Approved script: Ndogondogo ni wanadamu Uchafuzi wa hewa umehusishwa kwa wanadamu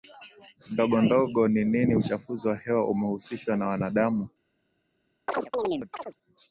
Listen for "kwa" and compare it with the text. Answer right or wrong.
wrong